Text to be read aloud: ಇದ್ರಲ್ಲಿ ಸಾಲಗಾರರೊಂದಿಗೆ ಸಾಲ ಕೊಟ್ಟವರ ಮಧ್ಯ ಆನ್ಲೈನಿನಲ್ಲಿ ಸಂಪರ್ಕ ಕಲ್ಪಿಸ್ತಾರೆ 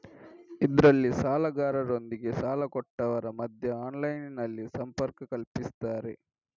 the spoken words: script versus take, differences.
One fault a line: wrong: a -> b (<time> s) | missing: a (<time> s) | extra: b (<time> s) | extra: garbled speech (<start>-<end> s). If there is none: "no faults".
no faults